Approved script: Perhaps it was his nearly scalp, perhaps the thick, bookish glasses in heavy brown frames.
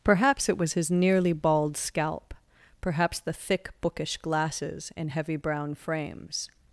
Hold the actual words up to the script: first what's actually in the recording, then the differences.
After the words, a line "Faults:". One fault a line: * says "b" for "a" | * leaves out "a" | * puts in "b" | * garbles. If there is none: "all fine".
Perhaps it was his nearly bald scalp, perhaps the thick, bookish glasses in heavy brown frames.
Faults:
* puts in "bald"